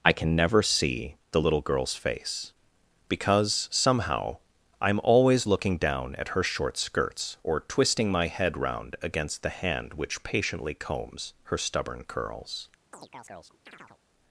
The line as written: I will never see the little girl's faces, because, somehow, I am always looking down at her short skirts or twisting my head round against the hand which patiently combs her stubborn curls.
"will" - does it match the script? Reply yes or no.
no